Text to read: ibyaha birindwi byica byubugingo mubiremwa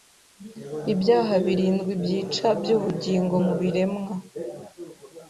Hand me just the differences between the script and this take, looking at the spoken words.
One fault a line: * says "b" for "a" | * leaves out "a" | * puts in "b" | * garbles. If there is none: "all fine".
all fine